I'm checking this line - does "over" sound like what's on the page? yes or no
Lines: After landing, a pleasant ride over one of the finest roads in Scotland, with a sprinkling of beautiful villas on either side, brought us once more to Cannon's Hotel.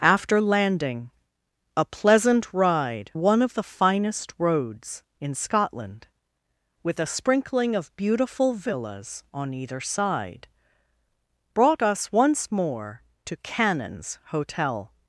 no